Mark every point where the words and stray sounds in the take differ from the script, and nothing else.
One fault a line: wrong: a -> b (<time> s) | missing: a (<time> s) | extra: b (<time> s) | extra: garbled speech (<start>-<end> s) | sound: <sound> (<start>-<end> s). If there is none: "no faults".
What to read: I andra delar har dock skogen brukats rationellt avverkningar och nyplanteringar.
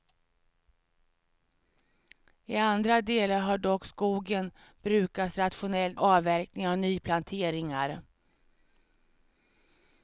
no faults